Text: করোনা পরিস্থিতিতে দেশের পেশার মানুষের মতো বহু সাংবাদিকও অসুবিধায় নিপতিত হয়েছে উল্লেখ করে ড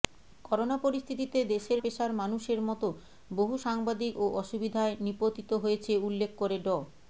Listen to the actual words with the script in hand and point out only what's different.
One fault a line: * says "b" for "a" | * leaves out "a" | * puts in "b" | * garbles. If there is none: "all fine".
all fine